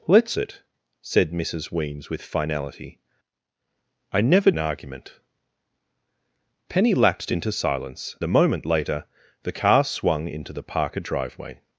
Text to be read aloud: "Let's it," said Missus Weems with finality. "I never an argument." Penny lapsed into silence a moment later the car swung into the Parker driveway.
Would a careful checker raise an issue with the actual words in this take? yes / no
no